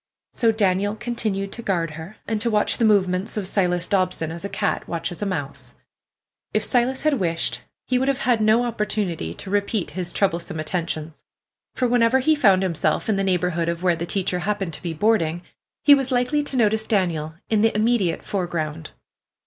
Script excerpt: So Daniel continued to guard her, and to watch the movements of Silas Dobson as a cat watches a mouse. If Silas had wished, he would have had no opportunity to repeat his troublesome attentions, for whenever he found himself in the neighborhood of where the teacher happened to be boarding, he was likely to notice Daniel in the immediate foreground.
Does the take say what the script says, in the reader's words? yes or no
yes